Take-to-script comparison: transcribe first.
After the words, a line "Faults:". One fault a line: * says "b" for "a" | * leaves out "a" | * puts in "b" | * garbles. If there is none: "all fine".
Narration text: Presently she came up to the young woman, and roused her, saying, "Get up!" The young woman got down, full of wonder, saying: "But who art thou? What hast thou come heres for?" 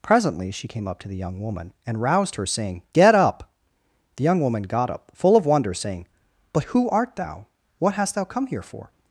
Presently she came up to the young woman, and roused her, saying, "Get up!" The young woman got up, full of wonder, saying: "But who art thou? What hast thou come here for?"
Faults:
* says "up" for "down"
* says "here" for "heres"